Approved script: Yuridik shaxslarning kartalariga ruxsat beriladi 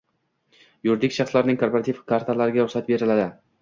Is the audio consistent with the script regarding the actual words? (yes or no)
no